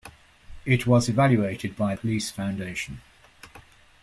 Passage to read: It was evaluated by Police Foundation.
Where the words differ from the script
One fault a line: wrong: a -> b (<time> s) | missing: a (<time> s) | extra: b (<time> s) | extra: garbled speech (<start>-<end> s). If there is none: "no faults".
no faults